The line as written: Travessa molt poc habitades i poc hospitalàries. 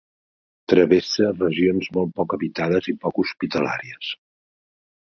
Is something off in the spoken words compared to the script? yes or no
yes